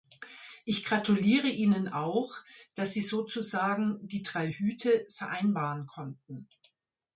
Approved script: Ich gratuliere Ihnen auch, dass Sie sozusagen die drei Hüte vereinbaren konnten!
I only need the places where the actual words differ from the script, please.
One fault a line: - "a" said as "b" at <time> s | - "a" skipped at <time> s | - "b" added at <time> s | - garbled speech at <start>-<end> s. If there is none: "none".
none